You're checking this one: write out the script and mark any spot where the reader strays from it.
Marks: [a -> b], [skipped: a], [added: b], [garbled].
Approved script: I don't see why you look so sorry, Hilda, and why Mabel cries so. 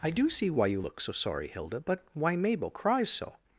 I [don't -> do] see why you look so sorry, Hilda, [and -> but] why Mabel cries so.